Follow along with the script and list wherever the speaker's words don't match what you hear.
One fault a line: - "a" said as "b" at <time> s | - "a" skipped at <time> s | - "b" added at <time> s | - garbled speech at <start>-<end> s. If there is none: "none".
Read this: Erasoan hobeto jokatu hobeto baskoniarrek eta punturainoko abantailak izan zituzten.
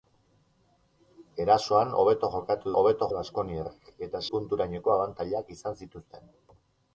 none